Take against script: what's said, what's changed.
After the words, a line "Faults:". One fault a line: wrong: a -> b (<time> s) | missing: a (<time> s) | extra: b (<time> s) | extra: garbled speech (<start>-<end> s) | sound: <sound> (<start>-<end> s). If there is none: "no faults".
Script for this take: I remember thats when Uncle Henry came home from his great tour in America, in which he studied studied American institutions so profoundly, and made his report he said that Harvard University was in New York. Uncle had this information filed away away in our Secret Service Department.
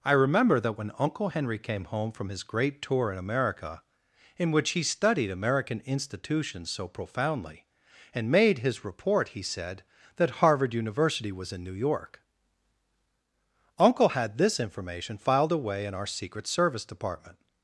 I remember that when Uncle Henry came home from his great tour in America, in which he studied American institutions so profoundly, and made his report he said that Harvard University was in New York. Uncle had this information filed away in our Secret Service Department.
Faults:
wrong: thats -> that (0.6 s)
missing: studied (5.3 s)
missing: away (15.8 s)